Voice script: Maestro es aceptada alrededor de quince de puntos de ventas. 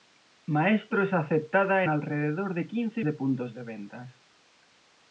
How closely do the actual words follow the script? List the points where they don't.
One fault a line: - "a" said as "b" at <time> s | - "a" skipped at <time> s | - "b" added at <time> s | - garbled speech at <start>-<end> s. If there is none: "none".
none